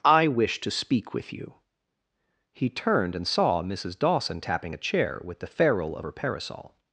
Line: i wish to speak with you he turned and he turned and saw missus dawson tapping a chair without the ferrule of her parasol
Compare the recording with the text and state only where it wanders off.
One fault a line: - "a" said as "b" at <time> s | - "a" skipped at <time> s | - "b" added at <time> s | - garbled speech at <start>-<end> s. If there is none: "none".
- "he turned and" skipped at 3.3 s
- "without" said as "with" at 5.2 s